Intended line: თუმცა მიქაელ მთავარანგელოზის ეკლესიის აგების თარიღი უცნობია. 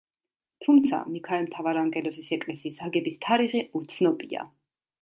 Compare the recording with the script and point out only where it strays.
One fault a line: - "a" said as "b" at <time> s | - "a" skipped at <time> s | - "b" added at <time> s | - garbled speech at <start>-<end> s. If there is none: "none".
none